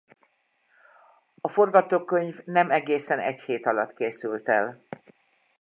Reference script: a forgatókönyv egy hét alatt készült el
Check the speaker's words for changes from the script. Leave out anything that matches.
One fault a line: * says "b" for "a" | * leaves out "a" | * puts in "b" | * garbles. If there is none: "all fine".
* puts in "nem egészen"